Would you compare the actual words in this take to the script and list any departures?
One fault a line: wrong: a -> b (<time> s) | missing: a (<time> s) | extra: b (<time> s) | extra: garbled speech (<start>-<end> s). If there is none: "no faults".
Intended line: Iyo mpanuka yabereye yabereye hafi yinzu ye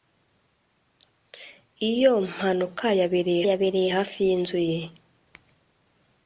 no faults